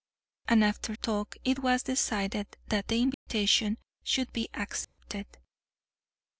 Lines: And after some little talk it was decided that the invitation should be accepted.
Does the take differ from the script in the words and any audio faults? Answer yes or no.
yes